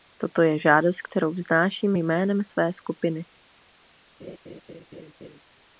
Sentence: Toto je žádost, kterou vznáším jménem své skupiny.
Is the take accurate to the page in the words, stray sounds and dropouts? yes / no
no